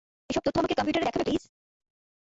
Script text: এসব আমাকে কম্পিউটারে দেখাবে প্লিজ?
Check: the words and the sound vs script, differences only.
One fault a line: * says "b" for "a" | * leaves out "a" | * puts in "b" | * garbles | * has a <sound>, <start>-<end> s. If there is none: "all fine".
* puts in "তথ্য"